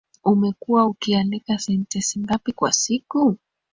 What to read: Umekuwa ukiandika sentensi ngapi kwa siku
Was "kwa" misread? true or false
false